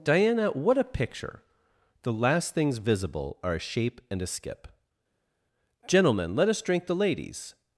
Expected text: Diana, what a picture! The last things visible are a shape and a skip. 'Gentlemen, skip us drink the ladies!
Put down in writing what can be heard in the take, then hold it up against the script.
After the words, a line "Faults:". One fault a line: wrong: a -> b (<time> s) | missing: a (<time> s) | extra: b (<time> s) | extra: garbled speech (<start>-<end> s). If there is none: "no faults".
Diana, what a picture! The last things visible are a shape and a skip. 'Gentlemen, let us drink the ladies!
Faults:
wrong: skip -> let (6.4 s)